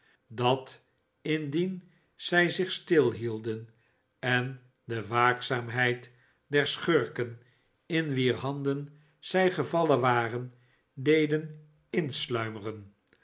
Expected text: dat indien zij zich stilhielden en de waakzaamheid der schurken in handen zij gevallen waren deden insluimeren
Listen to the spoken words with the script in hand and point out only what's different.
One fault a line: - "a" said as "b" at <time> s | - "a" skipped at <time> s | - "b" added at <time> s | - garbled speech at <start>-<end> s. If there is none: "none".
- "wier" added at 8.1 s